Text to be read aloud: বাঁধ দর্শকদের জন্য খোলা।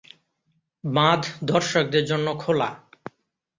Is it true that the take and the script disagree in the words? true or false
false